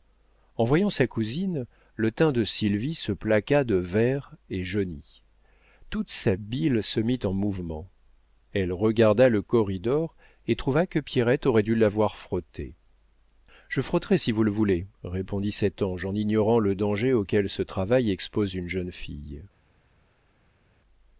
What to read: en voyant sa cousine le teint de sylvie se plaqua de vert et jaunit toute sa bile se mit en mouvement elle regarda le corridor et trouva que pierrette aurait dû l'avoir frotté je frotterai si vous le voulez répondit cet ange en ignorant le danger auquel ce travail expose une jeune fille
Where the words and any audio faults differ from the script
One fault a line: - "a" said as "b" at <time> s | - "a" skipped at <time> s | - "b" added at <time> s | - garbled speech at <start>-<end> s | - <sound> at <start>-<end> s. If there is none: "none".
none